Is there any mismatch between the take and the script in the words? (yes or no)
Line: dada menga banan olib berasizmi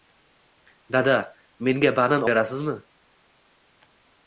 yes